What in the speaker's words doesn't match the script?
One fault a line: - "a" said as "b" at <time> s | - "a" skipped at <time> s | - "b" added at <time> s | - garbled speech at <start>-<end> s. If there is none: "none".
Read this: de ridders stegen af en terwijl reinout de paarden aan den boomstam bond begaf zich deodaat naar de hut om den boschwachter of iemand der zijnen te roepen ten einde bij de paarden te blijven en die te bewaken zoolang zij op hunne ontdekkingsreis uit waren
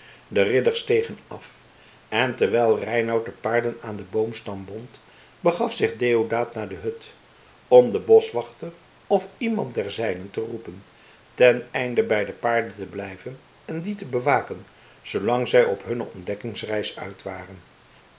none